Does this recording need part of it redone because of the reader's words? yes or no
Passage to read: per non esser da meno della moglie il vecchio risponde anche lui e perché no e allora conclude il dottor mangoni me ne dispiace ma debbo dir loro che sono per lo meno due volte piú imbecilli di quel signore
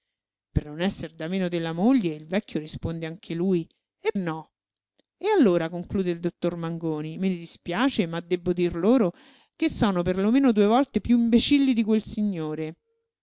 yes